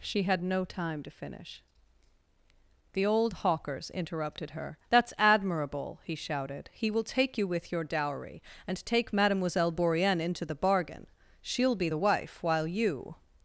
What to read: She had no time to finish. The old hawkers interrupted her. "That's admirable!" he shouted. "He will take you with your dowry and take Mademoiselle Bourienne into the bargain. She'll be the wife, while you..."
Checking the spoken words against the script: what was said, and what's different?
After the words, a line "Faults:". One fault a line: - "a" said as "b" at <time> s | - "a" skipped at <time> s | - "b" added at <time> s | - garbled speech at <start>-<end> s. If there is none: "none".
She had no time to finish. The old hawkers interrupted her. "That's admirable!" he shouted. "He will take you with your dowry and take Mademoiselle Bourienne into the bargain. She'll be the wife, while you..."
Faults:
none